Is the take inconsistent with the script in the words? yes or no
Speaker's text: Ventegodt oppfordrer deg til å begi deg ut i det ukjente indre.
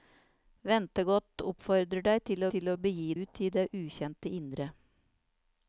yes